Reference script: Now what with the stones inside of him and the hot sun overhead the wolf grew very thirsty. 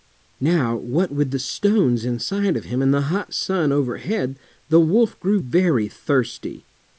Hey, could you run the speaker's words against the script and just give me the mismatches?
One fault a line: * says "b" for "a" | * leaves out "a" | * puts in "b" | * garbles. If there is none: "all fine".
all fine